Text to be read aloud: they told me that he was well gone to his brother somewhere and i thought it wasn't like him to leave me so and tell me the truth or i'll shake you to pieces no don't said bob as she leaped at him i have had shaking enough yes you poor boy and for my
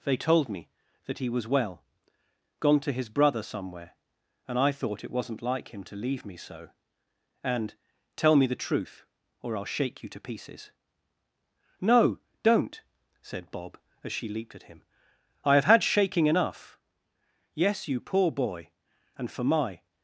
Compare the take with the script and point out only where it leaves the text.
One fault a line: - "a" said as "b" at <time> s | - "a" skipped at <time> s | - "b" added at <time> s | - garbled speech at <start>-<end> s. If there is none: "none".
none